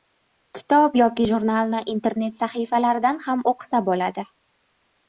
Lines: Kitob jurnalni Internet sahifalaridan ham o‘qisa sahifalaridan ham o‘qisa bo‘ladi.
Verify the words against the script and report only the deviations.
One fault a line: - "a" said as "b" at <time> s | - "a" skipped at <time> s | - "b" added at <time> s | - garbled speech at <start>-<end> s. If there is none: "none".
- "yoki" added at 1.0 s
- "sahifalaridan ham o‘qisa" skipped at 3.9 s